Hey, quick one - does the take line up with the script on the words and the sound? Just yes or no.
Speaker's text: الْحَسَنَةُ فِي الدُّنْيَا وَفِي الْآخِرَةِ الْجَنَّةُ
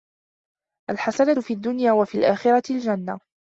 yes